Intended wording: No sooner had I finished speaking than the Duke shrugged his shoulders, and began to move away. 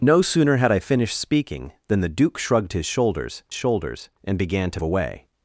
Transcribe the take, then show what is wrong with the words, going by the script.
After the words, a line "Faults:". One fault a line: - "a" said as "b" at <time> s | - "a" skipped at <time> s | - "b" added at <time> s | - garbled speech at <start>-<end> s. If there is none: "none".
No sooner had I finished speaking than the Duke shrugged his shoulders shoulders, and began to away.
Faults:
- "shoulders" added at 3.5 s
- "move" skipped at 4.8 s